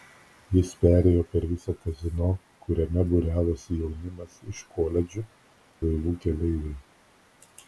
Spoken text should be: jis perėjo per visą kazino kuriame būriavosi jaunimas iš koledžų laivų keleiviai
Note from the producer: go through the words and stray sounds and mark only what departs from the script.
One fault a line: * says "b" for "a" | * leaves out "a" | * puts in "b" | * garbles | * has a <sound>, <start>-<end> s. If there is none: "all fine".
all fine